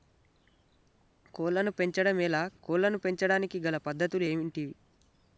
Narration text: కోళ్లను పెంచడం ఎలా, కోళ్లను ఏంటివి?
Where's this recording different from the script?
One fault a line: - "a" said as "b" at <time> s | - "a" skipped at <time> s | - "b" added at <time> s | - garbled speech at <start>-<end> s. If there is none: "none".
- "పెంచడానికి గల పద్ధతులు" added at 3.0 s